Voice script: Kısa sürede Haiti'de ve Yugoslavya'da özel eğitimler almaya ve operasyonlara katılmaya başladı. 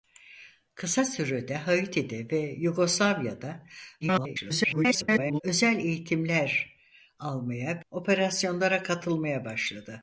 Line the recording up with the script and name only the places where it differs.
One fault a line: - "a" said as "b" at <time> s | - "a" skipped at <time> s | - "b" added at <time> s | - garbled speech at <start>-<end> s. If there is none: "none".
- garbled speech at 4.0-5.4 s
- "ve" skipped at 7.8 s